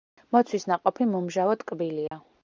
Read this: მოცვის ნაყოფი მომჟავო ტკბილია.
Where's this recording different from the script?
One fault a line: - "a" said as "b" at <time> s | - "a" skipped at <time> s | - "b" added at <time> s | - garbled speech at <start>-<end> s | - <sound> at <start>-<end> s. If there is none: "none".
- dropout at 2.1-2.1 s